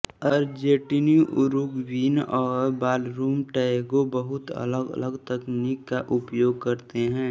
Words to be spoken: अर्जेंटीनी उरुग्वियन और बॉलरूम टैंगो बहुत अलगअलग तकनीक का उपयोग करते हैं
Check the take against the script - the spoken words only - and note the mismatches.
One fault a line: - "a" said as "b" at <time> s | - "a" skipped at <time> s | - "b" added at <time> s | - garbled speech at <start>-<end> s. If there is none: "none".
none